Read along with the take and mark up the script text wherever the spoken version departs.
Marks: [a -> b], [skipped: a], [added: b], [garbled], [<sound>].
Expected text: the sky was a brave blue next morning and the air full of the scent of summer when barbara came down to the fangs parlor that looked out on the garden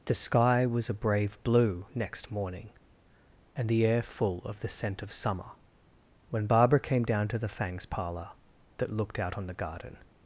the sky was a brave blue next morning and the air full of the scent of summer when barbara came down to the fangs parlor that looked out on the garden